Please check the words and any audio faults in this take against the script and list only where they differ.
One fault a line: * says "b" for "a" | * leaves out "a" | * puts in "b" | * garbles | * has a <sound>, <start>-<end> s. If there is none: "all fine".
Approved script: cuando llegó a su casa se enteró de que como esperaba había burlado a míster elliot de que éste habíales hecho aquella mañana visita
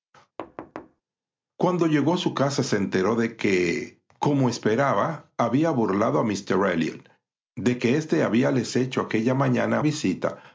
* has a thud, 0.4-1.0 s